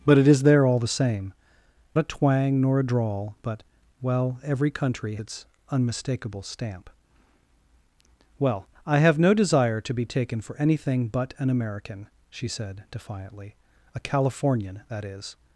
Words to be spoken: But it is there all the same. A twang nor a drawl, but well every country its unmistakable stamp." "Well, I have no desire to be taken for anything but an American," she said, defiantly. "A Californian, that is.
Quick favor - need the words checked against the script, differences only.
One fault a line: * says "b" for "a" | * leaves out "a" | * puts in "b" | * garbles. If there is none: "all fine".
all fine